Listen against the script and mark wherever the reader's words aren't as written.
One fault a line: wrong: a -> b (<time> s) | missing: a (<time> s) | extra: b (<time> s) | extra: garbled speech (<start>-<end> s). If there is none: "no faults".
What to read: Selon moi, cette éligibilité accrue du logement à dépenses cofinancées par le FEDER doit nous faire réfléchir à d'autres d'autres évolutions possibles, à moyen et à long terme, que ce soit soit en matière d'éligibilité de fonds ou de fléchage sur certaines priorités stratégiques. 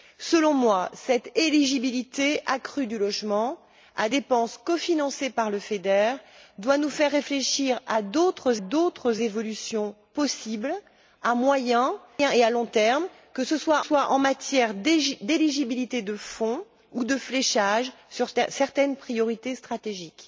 no faults